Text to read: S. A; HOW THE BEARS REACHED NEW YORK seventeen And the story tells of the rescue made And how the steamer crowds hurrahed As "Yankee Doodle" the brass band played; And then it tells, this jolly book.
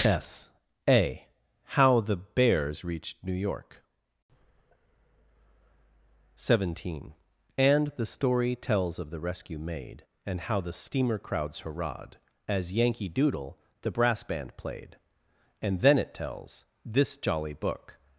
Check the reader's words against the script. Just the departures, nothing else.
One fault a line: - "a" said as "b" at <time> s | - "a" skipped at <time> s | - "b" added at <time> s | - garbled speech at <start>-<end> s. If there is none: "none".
none